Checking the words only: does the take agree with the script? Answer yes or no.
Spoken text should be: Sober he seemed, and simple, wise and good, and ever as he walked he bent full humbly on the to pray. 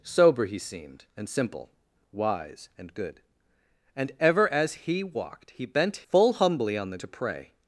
yes